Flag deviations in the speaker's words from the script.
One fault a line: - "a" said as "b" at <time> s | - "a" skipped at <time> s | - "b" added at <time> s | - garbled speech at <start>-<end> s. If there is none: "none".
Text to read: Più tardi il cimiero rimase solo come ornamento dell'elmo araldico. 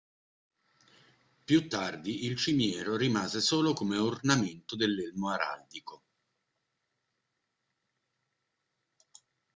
none